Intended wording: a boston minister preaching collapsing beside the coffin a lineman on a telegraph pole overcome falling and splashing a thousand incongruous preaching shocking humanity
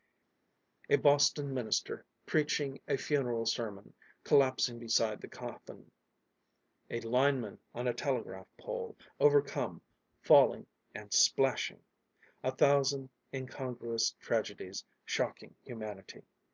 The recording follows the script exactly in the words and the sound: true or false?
false